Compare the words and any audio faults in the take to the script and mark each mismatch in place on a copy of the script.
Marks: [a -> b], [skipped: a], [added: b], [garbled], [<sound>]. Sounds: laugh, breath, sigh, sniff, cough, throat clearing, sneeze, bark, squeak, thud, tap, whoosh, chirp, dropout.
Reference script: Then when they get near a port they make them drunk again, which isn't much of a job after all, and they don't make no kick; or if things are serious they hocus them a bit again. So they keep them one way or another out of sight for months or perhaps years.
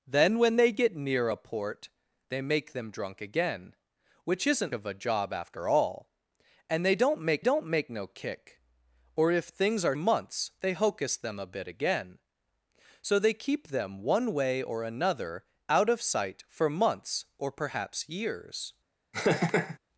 Then when they get near a port they make them drunk again, which isn't [skipped: much] of a job after all, and they don't make [added: don't make] no kick; or if things are [serious -> months] they hocus them a bit again. So they keep them one way or another out of sight for months or perhaps years. [laugh]